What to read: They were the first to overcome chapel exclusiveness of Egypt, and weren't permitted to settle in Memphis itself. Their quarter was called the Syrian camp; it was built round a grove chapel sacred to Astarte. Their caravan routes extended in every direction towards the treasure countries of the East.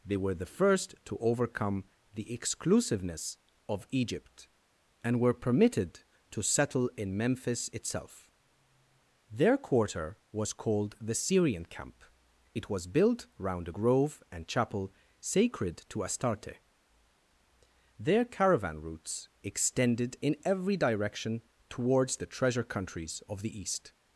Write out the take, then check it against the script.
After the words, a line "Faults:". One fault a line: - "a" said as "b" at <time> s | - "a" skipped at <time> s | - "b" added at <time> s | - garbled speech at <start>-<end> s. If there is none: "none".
They were the first to overcome the exclusiveness of Egypt, and were permitted to settle in Memphis itself. Their quarter was called the Syrian camp; it was built round a grove and chapel sacred to Astarte. Their caravan routes extended in every direction towards the treasure countries of the East.
Faults:
- "chapel" said as "the" at 2.1 s
- "weren't" said as "were" at 5.2 s
- "and" added at 14.3 s